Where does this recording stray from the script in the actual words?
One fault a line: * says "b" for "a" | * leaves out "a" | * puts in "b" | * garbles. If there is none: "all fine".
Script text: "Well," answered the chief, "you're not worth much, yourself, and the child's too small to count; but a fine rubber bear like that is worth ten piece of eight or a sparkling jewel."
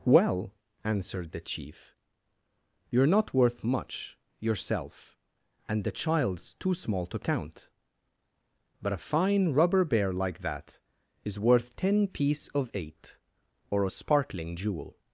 all fine